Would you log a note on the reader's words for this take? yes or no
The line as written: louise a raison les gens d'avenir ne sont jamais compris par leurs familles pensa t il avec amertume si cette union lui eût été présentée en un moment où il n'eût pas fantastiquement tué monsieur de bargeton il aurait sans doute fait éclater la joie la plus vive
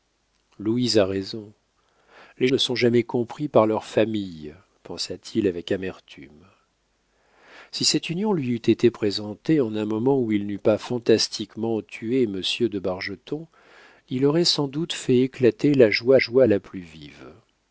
yes